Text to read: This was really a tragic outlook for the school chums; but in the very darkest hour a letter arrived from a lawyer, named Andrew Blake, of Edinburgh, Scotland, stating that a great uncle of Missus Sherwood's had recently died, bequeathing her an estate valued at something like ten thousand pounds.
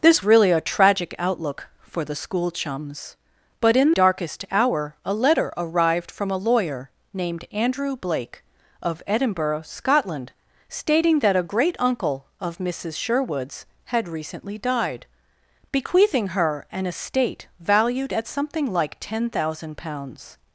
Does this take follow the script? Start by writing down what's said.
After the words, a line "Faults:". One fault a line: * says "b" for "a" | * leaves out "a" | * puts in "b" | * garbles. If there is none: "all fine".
This really a tragic outlook for the school chums; but in darkest hour a letter arrived from a lawyer, named Andrew Blake, of Edinburgh, Scotland, stating that a great uncle of Missus Sherwood's had recently died, bequeathing her an estate valued at something like ten thousand pounds.
Faults:
* leaves out "was"
* leaves out "the very"